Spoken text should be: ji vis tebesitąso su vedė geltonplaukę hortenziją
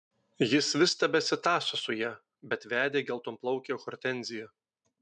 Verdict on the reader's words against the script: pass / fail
fail